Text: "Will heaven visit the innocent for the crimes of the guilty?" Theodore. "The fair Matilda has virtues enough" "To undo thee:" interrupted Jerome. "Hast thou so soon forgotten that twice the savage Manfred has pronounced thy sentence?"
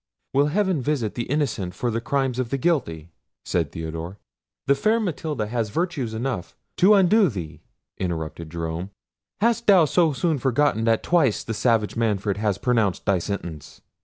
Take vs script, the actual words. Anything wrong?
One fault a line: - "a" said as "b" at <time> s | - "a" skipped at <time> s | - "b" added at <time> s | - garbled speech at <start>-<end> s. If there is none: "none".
- "said" added at 3.5 s